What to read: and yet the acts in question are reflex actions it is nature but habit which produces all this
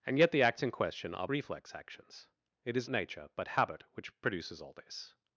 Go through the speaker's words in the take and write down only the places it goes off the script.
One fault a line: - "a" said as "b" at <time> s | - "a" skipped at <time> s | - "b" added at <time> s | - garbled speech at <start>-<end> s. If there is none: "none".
none